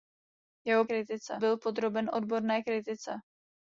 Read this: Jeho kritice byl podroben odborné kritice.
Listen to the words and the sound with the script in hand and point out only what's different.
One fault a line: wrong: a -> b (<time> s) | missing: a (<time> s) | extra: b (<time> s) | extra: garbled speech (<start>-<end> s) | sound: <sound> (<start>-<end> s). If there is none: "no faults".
no faults